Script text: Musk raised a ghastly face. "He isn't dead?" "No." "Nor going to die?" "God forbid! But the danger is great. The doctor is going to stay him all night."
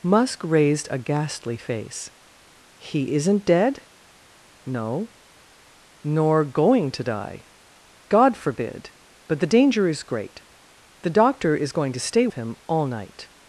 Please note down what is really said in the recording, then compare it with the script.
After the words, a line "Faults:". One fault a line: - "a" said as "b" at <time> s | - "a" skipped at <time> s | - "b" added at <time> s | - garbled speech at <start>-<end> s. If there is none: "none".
Musk raised a ghastly face. "He isn't dead?" "No." "Nor going to die?" "God forbid! But the danger is great. The doctor is going to stay him all night."
Faults:
none